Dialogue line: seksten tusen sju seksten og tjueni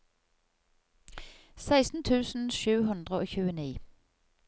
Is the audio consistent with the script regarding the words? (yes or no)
no